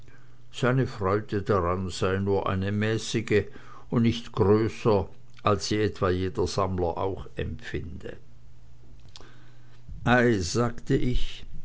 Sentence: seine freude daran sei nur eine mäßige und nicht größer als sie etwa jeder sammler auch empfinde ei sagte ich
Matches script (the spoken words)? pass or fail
pass